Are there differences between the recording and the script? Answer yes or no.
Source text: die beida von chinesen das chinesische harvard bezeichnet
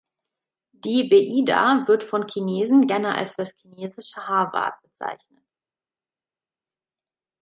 yes